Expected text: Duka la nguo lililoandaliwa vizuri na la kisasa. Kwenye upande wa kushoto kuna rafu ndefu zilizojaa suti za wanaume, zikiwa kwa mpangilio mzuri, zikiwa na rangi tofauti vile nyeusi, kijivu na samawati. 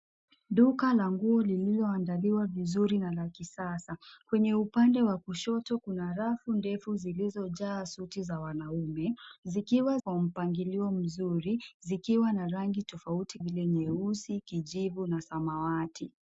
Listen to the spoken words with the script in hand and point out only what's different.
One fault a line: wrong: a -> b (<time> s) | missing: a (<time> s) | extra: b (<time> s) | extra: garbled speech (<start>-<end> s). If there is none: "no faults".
no faults